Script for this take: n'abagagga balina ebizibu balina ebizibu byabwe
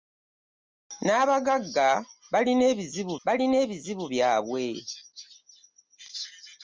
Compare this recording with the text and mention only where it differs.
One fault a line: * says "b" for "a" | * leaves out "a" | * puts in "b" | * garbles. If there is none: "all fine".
all fine